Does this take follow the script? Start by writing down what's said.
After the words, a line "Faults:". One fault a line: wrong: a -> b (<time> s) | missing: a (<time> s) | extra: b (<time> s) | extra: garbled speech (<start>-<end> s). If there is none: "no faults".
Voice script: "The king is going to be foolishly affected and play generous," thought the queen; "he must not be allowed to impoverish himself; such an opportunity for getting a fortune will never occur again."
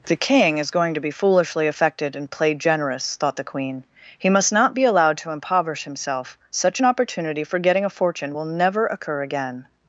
"The king is going to be foolishly affected and play generous," thought the queen; "he must not be allowed to impoverish himself; such an opportunity for getting a fortune will never occur again."
Faults:
no faults